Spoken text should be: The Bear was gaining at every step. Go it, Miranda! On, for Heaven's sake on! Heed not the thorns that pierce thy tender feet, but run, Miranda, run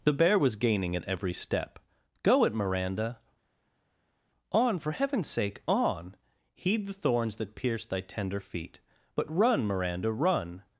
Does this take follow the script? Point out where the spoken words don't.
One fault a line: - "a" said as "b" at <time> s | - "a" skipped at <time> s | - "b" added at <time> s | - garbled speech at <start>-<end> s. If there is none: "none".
- "not" skipped at 6.9 s